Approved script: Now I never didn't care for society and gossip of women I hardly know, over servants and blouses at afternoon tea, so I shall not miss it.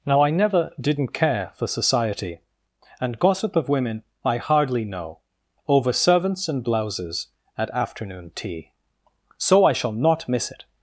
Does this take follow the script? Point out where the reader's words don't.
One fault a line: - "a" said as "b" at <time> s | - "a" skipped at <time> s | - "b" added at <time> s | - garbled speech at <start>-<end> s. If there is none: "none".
none